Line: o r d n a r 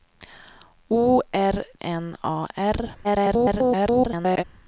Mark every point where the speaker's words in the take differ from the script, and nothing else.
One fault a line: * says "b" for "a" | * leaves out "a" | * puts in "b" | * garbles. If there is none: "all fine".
* leaves out "d"
* garbles